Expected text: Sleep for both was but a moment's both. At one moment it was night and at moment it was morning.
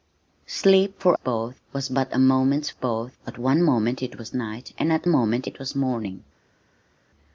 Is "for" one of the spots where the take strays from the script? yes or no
no